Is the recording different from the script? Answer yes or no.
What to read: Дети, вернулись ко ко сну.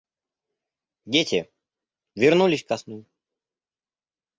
yes